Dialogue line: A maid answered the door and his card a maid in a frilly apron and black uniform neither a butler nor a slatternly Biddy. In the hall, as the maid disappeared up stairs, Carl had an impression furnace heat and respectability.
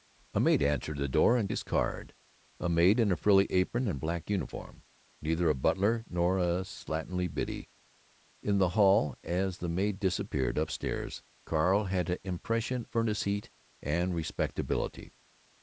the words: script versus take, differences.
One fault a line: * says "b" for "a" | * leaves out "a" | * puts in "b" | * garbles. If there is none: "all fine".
all fine